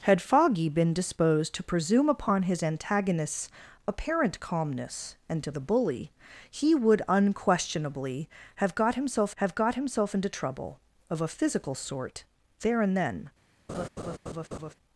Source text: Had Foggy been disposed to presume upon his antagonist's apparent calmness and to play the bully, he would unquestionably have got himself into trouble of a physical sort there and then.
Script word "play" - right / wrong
wrong